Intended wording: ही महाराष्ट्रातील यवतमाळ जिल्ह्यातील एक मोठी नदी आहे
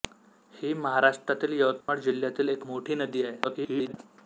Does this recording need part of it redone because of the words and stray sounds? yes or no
yes